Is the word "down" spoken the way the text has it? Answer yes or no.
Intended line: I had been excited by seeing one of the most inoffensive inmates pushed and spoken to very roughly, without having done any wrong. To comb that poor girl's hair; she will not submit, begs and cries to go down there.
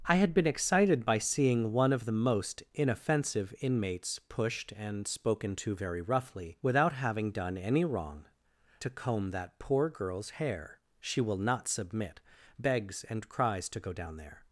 yes